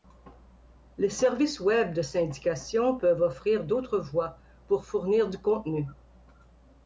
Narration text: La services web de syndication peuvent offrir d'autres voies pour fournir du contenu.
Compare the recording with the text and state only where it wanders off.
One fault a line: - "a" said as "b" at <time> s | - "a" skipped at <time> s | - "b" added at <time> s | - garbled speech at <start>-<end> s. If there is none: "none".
- "La" said as "Les" at 1.0 s